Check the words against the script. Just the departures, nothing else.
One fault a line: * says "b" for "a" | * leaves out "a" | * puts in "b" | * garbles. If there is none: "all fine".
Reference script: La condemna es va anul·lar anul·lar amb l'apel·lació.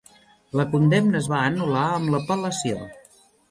* leaves out "anul·lar"